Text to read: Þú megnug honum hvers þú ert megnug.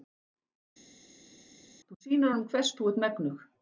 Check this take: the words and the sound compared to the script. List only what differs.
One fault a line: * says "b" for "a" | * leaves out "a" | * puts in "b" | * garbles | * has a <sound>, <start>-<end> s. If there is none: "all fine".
* says "sýnir" for "megnug"